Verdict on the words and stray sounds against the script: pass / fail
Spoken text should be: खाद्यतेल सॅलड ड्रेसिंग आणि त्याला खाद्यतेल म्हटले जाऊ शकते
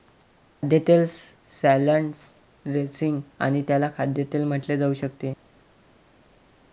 pass